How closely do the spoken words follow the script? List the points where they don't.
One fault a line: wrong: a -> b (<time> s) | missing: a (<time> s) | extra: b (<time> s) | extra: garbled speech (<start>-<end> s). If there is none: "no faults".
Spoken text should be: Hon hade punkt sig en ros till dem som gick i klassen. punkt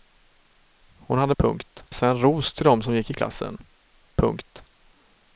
no faults